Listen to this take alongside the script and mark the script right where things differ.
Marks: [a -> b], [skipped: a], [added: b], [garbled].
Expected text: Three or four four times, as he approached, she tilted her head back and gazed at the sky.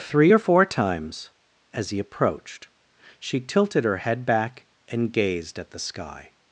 Three or four [skipped: four] times, as he approached, she tilted her head back and gazed at the sky.